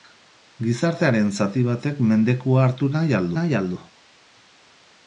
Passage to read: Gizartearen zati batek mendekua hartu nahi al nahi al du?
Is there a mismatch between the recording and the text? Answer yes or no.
no